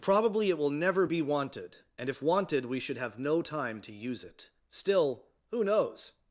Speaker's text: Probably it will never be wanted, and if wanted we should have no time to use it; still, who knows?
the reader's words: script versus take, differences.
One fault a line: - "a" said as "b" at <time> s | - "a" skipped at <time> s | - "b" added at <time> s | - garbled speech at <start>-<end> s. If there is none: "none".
none